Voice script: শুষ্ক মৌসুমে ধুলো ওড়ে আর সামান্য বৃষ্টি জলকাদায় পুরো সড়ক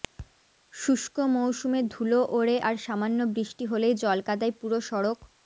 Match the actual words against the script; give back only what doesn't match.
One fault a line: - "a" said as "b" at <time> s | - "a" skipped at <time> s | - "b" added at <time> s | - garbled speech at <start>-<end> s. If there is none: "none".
- "হলেই" added at 3.7 s